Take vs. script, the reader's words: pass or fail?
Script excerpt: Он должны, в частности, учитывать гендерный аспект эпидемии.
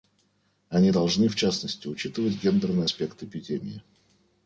fail